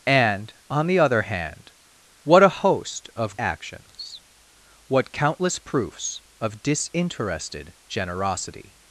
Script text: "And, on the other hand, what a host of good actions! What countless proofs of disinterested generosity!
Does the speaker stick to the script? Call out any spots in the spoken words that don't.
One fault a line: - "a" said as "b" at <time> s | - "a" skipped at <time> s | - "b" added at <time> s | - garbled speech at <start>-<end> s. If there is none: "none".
- "good" skipped at 3.4 s